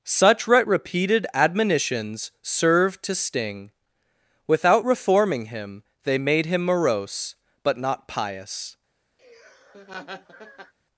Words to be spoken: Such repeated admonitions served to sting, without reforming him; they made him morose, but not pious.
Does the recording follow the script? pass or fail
pass